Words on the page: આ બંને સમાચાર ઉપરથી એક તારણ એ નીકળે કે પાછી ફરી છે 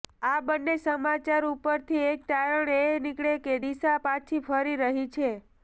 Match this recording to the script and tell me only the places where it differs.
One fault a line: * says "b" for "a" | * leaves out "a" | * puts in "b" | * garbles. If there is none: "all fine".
* puts in "દિશા"
* puts in "રહી"